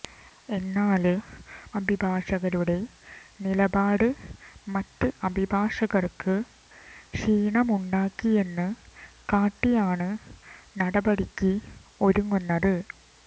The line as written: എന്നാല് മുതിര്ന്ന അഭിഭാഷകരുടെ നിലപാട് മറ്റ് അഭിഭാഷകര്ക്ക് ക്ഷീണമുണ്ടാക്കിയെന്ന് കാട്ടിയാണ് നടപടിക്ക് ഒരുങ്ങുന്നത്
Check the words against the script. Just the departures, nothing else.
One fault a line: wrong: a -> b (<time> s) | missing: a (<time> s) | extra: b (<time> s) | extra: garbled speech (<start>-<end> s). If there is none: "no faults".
missing: മുതിര്ന്ന (1.1 s)